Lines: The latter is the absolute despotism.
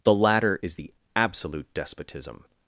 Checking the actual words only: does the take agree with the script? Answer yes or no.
yes